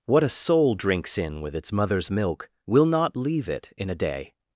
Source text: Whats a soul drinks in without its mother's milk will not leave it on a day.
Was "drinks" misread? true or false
false